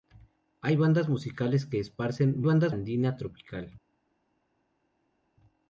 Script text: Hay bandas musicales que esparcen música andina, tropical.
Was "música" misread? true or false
true